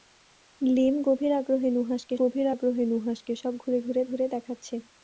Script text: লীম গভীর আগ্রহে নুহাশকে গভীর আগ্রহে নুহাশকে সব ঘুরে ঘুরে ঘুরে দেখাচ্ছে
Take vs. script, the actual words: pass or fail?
pass